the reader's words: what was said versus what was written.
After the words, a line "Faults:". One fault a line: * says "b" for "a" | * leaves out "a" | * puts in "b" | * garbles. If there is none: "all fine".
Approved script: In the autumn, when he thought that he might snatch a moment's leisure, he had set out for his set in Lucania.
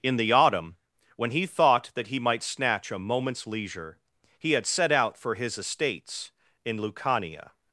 In the autumn, when he thought that he might snatch a moment's leisure, he had set out for his estates in Lucania.
Faults:
* says "estates" for "set"